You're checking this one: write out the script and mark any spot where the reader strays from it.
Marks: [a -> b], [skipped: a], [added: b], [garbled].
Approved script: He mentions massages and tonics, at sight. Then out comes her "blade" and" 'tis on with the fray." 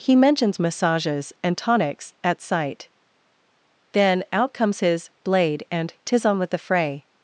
He mentions massages and tonics, at sight. Then out comes [her -> his] "blade" and" 'tis on with the fray."